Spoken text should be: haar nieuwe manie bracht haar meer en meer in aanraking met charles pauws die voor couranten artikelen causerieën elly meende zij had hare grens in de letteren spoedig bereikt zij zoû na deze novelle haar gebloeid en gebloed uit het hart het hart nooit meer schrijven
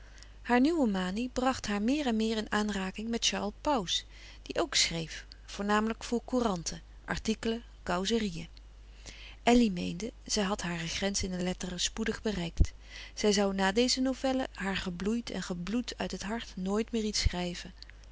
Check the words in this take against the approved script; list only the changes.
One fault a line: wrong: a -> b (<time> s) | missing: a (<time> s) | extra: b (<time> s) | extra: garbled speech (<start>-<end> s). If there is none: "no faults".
extra: ook schreef voornamelijk (4.6 s)
missing: het hart (16.5 s)
extra: iets (17.0 s)